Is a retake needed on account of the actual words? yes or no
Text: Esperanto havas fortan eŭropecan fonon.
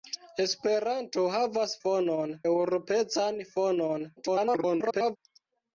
yes